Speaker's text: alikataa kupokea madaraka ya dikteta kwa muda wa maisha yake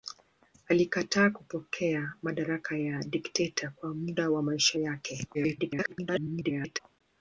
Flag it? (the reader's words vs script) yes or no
yes